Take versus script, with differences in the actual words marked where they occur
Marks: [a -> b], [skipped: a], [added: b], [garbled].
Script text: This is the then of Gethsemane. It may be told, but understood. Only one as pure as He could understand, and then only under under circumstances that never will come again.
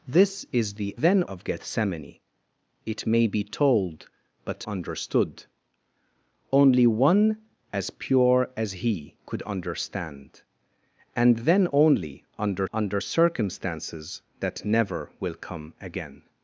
This is the then of Gethsemane. It may be told, but understood. Only one as pure as He could understand, and then only under under circumstances that never will come again.